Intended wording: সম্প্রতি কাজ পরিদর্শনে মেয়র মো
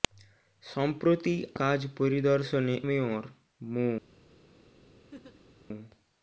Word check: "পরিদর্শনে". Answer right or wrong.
right